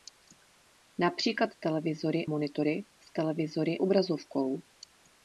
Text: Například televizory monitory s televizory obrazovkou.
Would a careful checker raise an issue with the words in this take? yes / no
no